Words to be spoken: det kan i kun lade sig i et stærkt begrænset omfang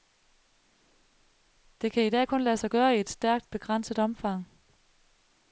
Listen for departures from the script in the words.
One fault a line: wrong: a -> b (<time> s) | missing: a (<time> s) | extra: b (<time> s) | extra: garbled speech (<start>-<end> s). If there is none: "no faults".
extra: dag (2.1 s)
extra: gøre (2.7 s)